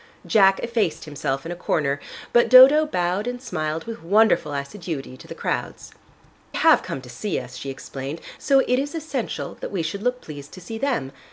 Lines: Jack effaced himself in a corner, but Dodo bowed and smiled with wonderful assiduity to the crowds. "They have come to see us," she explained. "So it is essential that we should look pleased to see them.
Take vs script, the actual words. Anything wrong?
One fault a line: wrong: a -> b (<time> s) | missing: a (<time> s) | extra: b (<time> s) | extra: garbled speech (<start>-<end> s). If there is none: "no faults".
missing: They (5.9 s)